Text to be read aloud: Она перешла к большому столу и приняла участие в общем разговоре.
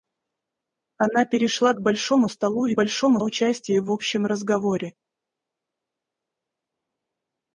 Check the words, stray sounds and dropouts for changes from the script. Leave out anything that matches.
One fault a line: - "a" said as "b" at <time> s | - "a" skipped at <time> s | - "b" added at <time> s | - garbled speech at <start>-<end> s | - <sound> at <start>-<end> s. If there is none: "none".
- "приняла" said as "большому" at 2.7 s